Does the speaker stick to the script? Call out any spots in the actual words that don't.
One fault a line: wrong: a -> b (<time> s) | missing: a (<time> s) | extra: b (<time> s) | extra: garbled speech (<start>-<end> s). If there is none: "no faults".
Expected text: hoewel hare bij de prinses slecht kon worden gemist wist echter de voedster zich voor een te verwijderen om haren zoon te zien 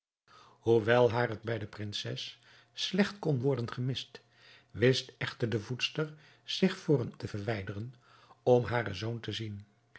no faults